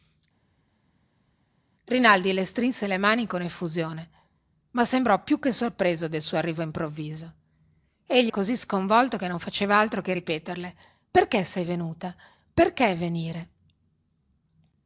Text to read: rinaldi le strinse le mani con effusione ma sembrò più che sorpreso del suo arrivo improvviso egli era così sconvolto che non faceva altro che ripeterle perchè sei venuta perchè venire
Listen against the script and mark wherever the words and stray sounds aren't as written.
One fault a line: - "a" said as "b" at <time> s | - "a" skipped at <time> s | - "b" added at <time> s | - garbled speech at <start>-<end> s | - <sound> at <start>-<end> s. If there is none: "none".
- "era" skipped at 8.3 s